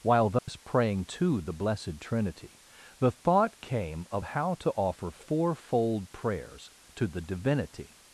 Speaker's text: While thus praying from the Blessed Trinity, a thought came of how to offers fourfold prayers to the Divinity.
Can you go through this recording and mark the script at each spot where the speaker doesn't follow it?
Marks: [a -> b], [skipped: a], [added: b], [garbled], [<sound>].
While thus [dropout] praying [from -> to] the Blessed Trinity, [a -> the] thought came of how to [offers -> offer] fourfold prayers to the Divinity.